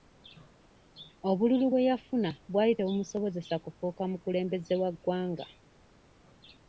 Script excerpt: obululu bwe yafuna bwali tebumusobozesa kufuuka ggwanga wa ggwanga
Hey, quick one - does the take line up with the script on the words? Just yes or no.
no